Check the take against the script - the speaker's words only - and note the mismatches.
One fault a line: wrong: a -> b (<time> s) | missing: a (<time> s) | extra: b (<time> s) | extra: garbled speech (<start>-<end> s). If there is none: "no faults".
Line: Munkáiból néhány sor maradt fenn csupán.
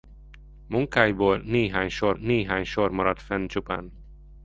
extra: néhány sor (2.1 s)